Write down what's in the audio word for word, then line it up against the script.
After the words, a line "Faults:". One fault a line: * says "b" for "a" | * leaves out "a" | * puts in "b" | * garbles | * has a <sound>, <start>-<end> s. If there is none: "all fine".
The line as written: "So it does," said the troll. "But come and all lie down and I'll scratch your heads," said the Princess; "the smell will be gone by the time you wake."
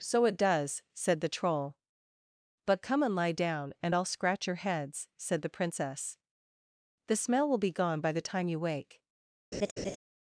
"So it does," said the troll. "But come and lie down and I'll scratch your heads," said the Princess; "the smell will be gone by the time you wake."
Faults:
* leaves out "all"
* has a laugh, 9.5-10.0 s